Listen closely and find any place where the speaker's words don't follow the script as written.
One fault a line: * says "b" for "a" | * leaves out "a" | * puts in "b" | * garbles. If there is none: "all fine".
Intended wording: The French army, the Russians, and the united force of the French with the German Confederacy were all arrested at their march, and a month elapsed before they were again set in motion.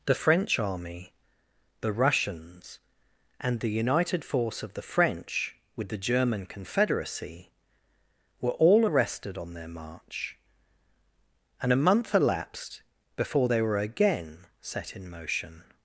* says "on" for "at"